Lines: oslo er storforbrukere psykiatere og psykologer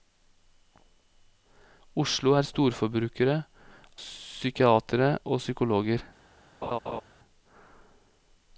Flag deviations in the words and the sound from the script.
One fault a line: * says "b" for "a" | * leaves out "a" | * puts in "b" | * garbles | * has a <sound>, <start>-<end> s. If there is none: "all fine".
* has a laugh, 6.6-7.0 s